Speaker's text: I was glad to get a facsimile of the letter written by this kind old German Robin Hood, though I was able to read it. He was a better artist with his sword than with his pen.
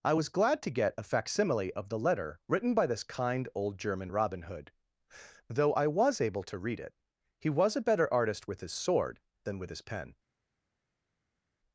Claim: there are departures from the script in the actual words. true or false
false